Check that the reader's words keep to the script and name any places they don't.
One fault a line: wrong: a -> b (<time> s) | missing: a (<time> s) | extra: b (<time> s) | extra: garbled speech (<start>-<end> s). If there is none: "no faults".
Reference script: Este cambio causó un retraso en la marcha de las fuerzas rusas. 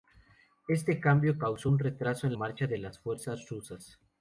missing: la (2.3 s)